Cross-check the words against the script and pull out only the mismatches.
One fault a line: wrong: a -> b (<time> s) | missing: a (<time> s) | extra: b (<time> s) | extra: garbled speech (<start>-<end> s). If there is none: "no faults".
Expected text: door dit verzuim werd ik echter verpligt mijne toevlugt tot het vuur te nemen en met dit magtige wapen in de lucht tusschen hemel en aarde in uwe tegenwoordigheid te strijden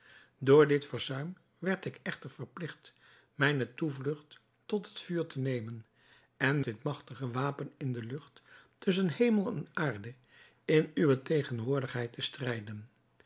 missing: met (6.6 s)